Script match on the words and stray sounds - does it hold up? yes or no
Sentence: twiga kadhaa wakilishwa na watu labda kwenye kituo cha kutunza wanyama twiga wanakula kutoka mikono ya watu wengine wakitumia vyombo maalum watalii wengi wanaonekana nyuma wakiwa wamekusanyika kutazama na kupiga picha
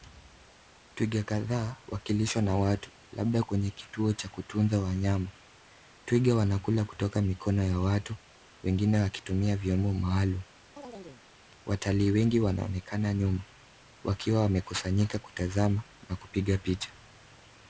no